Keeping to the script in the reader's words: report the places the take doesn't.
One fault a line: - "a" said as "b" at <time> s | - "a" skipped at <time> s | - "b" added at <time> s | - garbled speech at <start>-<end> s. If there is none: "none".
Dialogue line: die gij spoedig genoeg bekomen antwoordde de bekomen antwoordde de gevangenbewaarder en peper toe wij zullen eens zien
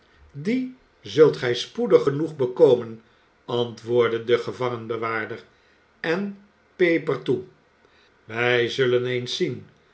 - "zult" added at 1.0 s
- "bekomen antwoordde de" skipped at 4.4 s